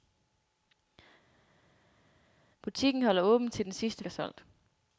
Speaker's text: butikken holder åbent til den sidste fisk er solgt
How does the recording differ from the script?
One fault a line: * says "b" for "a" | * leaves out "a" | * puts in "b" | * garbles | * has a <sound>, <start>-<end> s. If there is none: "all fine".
* leaves out "fisk"